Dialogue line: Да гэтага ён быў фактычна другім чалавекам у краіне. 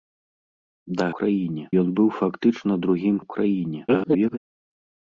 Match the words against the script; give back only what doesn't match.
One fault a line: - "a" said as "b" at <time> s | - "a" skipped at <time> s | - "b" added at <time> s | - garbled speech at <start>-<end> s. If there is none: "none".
- "гэтага" said as "краіне" at 1.2 s
- "чалавекам" skipped at 3.2 s
- garbled speech at 3.9-4.4 s